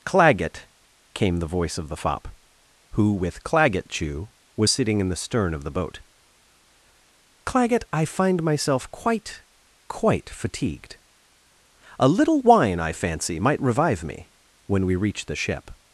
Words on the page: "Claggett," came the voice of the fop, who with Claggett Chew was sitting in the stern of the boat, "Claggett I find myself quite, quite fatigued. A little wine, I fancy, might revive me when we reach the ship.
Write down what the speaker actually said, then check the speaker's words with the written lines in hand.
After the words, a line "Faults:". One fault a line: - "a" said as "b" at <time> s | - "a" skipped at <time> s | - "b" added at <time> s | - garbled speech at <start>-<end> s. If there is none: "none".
"Claggett," came the voice of the fop, who with Claggett Chew was sitting in the stern of the boat, "Claggett I find myself quite, quite fatigued. A little wine, I fancy, might revive me when we reach the ship.
Faults:
none